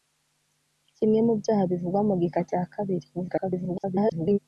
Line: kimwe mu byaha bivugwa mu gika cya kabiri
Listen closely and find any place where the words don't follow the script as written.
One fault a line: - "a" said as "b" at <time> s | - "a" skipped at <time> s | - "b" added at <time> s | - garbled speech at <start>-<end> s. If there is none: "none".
- garbled speech at 3.1-4.4 s